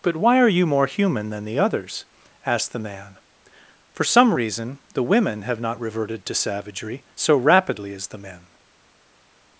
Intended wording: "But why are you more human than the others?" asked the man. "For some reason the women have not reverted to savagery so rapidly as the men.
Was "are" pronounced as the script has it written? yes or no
yes